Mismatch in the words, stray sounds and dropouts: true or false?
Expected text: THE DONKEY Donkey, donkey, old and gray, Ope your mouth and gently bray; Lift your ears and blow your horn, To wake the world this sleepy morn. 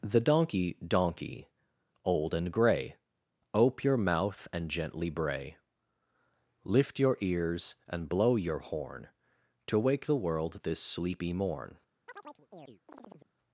true